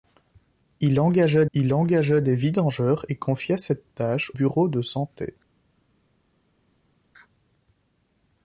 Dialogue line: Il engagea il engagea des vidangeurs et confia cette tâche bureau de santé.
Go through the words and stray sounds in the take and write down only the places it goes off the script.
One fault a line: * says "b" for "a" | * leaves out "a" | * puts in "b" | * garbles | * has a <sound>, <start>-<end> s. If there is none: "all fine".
all fine